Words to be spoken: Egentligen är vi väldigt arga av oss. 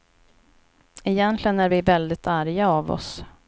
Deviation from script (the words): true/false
false